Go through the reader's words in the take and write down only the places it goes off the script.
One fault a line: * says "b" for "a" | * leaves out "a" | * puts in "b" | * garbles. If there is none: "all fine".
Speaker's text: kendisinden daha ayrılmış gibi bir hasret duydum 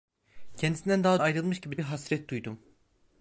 all fine